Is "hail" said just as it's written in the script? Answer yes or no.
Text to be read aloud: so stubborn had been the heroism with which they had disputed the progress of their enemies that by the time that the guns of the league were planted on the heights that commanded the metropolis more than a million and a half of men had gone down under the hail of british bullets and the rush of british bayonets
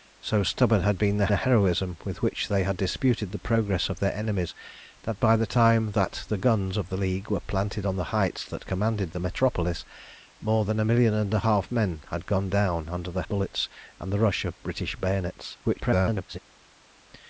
no